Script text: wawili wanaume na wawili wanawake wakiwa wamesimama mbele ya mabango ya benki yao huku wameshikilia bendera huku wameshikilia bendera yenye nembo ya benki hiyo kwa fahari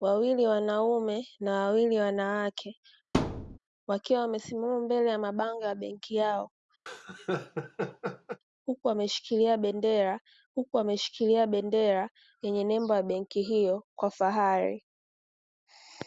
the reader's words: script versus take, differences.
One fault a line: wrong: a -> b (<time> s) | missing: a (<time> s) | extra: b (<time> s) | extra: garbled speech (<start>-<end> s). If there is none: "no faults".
no faults